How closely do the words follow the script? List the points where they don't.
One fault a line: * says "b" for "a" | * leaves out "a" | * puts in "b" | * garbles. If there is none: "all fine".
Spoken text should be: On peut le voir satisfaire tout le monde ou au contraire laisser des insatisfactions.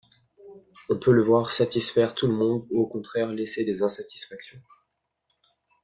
all fine